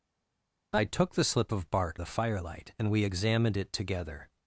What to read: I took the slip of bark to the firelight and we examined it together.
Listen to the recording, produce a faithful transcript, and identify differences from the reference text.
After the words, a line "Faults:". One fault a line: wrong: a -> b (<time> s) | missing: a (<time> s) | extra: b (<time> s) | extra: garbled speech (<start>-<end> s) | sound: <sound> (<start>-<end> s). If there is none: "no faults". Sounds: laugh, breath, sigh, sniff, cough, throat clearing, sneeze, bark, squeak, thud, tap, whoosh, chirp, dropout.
I took the slip of bark the firelight and we examined it together.
Faults:
missing: to (2.0 s)